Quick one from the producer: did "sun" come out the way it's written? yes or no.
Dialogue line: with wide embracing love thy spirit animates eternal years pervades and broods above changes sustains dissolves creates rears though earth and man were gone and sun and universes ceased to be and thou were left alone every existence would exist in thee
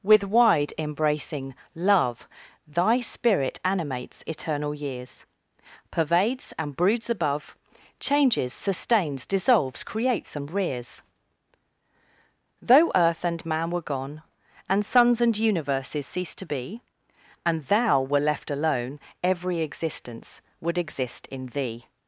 no